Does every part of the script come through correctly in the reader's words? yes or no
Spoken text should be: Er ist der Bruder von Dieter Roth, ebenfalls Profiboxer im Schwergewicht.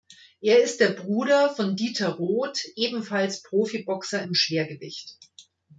yes